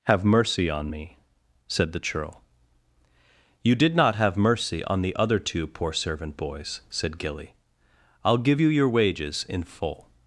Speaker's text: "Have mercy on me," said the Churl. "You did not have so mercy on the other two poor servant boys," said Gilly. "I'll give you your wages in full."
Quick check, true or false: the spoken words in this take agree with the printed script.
false